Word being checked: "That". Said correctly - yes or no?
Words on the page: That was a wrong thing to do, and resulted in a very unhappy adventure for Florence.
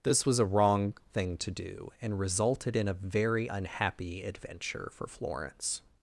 no